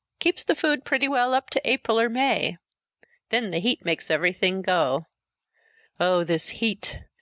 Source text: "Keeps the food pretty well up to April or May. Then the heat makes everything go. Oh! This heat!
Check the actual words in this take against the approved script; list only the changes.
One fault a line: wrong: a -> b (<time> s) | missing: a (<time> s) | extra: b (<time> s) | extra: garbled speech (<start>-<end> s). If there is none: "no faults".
no faults